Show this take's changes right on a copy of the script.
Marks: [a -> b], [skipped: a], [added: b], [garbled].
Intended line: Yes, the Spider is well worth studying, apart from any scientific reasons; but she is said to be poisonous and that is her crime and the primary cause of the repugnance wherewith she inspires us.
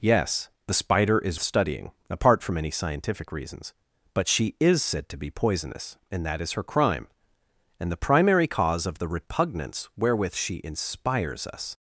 Yes, the Spider is [skipped: well worth] studying, apart from any scientific reasons; but she is said to be poisonous and that is her crime and the primary cause of the repugnance wherewith she inspires us.